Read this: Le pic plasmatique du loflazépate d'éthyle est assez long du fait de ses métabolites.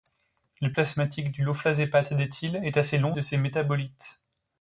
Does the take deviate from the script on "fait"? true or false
true